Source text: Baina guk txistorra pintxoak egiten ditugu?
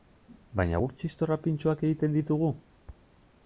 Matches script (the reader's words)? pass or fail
pass